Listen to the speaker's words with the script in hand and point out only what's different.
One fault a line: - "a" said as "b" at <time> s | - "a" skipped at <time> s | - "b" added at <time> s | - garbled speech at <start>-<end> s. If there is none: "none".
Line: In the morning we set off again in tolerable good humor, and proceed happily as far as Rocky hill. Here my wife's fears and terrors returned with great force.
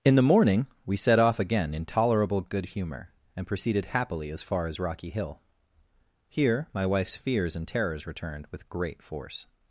- "proceed" said as "proceeded" at 3.5 s